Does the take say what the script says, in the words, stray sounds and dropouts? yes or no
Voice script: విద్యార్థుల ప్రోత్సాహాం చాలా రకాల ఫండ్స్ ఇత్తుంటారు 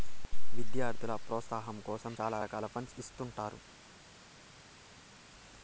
no